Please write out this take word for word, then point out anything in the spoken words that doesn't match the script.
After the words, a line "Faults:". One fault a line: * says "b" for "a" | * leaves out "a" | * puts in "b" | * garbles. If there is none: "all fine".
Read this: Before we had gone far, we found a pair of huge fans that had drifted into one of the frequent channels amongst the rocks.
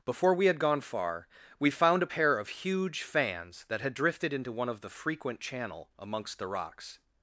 Before we had gone far, we found a pair of huge fans that had drifted into one of the frequent channel amongst the rocks.
Faults:
* says "channel" for "channels"